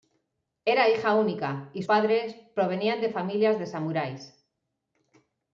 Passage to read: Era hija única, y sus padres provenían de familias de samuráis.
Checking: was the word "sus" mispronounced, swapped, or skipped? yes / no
yes